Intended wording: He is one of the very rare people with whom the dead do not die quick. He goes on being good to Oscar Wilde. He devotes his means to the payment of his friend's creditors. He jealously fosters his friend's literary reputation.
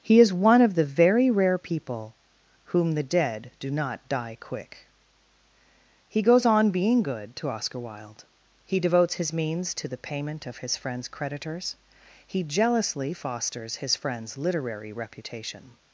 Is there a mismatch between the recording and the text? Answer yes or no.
yes